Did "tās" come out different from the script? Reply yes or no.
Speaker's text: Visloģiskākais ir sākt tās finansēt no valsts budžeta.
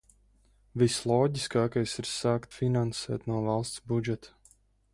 yes